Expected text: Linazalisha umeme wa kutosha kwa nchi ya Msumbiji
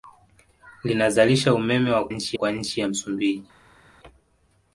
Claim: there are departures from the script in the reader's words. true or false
true